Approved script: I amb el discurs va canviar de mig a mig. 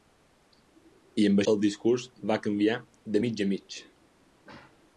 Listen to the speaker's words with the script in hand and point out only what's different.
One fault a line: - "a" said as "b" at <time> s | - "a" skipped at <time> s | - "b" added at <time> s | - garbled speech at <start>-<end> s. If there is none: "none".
none